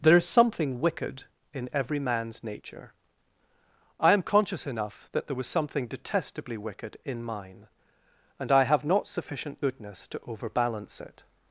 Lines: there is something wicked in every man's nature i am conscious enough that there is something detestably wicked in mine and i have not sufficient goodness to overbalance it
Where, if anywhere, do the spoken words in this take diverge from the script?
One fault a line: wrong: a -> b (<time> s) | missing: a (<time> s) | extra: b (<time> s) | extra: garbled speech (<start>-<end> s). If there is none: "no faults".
wrong: is -> was (5.3 s)